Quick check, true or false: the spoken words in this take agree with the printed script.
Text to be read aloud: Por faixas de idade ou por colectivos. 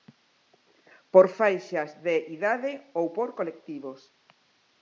true